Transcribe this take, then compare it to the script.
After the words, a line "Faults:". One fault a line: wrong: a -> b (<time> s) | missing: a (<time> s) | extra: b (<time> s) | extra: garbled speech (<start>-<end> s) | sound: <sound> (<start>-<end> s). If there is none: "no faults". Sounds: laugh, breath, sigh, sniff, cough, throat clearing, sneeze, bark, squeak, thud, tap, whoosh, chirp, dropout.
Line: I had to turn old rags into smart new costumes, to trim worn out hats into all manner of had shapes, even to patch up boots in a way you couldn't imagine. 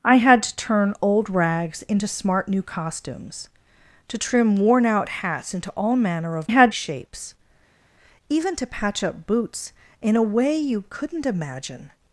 I had to turn old rags into smart new costumes, to trim worn out hats into all manner of had shapes, even to patch up boots in a way you couldn't imagine.
Faults:
no faults